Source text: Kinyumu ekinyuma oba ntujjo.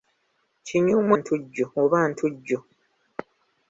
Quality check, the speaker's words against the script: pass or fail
fail